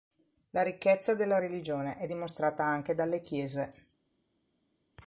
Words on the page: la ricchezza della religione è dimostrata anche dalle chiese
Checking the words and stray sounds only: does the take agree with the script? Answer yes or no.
yes